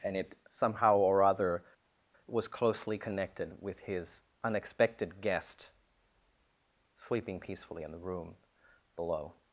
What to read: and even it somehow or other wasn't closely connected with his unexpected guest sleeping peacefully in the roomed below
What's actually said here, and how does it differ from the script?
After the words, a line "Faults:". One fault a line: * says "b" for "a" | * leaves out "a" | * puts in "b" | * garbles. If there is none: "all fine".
and it somehow or other was closely connected with his unexpected guest sleeping peacefully in the room below
Faults:
* leaves out "even"
* says "was" for "wasn't"
* says "room" for "roomed"